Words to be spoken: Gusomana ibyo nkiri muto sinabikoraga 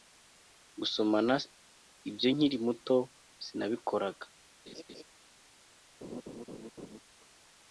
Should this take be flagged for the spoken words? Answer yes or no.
no